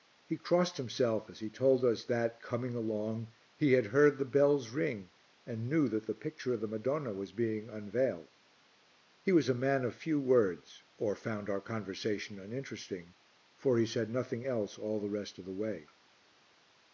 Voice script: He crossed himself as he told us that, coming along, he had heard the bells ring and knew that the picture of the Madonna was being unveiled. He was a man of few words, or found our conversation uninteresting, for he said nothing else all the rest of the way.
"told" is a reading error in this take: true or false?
false